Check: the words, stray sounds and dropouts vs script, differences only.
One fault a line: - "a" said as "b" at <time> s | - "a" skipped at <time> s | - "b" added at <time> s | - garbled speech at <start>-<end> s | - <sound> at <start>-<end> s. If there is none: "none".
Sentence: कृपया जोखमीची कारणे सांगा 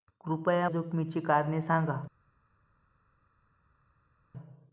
none